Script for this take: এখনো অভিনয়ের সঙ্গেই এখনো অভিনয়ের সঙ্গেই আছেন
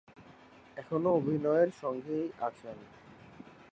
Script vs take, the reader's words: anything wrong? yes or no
yes